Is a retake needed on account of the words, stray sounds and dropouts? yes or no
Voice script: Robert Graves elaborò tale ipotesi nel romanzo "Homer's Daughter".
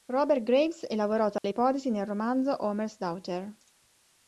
yes